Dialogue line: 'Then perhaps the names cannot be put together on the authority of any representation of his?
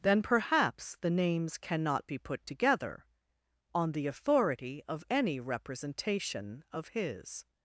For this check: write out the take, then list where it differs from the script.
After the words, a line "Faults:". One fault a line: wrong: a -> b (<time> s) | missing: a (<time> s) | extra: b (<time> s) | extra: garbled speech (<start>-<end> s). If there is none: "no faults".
'Then perhaps the names cannot be put together on the authority of any representation of his?
Faults:
no faults